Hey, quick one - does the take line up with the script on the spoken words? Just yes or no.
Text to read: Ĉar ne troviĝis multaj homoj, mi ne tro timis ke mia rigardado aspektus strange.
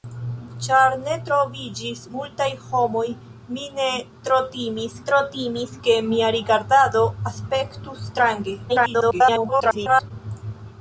no